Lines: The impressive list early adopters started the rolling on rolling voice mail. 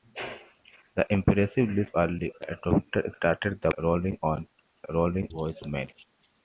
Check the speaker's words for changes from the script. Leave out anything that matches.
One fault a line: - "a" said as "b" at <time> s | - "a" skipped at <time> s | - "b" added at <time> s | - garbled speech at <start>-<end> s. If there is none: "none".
none